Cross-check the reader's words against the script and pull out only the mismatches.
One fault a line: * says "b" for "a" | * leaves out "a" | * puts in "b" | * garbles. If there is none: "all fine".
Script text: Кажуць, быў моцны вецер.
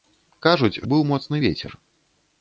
all fine